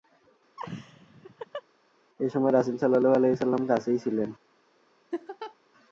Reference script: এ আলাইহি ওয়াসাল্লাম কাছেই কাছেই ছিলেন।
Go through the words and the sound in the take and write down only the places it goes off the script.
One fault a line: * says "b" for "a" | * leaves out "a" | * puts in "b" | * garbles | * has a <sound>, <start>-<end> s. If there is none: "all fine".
* has a laugh, 0.6-1.6 s
* puts in "সময় রাসূল সাল্লাল্লাহু"
* leaves out "কাছেই"
* has a laugh, 5.1-5.6 s